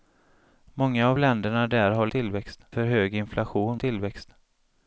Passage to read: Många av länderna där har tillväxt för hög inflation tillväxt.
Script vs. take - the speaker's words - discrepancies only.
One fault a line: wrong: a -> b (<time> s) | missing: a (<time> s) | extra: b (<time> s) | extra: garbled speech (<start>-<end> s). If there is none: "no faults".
no faults